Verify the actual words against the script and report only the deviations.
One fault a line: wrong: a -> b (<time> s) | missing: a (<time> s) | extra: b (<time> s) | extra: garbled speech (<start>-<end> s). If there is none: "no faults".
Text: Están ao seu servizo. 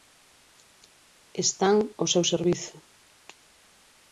no faults